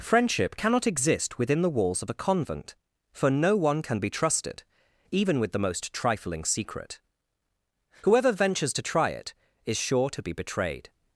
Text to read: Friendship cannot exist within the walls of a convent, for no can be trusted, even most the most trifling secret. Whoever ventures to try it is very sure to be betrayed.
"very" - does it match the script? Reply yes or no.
no